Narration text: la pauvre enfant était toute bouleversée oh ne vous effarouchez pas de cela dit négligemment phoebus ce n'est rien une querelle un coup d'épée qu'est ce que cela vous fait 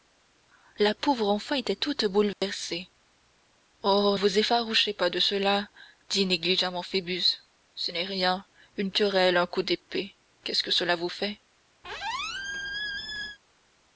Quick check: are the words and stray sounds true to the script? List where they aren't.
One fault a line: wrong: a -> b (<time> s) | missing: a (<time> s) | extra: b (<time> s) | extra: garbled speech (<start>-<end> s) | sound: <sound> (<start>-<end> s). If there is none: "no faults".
sound: dropout (2.3-2.4 s)
missing: ne (4.2 s)
sound: squeak (11.8-13.4 s)